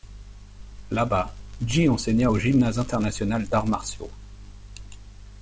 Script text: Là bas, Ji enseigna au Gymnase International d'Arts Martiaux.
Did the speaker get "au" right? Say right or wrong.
right